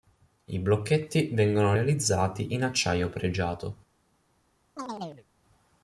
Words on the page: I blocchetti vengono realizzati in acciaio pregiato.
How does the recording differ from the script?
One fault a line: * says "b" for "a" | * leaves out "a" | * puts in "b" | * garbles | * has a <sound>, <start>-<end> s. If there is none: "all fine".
* has a chirp, 4.8-5.3 s